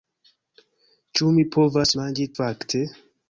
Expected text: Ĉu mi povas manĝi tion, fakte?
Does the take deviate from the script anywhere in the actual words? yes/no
yes